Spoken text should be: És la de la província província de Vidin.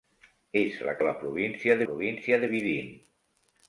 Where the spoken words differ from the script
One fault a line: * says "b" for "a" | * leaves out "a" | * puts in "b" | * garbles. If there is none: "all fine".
all fine